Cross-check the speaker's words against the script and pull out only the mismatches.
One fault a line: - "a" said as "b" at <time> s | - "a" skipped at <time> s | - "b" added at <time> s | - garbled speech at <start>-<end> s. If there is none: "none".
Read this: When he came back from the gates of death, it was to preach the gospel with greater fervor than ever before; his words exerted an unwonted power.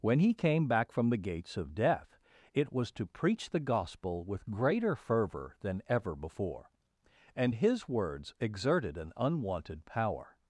- "and" added at 7.3 s